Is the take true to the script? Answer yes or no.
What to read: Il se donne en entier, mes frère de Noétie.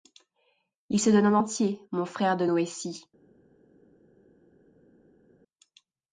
no